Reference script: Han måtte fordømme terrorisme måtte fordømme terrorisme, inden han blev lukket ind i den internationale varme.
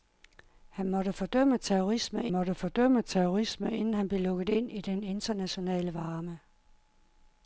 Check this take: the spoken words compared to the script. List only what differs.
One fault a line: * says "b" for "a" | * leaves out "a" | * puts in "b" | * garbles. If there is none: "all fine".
all fine